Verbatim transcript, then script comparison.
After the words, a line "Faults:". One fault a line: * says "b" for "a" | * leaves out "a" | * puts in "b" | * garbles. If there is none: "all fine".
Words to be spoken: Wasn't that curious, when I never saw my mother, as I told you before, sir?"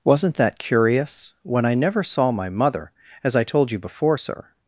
Wasn't that curious, when I never saw my mother, as I told you before, sir?"
Faults:
all fine